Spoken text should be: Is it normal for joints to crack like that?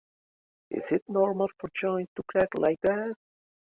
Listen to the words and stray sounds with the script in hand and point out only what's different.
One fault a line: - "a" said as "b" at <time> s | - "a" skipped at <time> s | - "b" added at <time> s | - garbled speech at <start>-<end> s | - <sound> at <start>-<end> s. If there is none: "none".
none